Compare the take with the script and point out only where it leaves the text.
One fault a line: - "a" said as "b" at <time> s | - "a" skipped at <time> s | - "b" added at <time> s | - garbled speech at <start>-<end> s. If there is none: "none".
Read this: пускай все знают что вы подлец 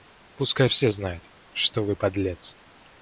none